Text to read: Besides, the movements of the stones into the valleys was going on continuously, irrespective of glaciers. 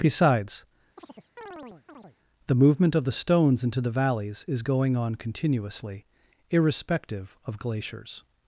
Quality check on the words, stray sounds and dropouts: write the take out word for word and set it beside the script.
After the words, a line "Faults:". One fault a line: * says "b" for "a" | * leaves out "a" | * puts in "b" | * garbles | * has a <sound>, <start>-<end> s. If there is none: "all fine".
Besides, the movement of the stones into the valleys is going on continuously, irrespective of glaciers.
Faults:
* has a chirp, 1.0-2.2 s
* says "movement" for "movements"
* says "is" for "was"